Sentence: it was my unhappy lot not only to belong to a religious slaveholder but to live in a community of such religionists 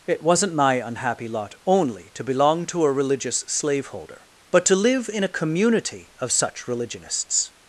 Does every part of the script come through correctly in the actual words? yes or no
no